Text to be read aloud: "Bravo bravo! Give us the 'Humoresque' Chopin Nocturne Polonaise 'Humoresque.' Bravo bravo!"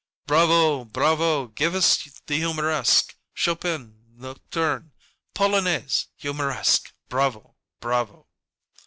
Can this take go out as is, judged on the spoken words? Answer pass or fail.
pass